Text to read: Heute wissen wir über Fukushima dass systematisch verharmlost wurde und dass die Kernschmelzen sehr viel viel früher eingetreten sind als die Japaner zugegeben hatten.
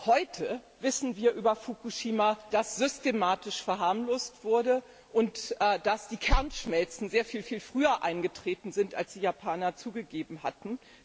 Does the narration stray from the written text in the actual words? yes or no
no